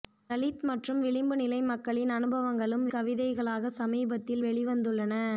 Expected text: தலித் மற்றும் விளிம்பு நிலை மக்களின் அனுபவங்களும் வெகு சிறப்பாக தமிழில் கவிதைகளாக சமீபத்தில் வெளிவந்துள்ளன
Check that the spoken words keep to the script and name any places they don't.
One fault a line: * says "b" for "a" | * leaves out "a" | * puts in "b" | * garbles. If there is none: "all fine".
* leaves out "வெகு சிறப்பாக தமிழில்"